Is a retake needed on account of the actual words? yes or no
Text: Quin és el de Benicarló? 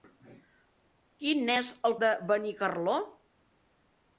no